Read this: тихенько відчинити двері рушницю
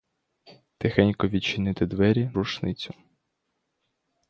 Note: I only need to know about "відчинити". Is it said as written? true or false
true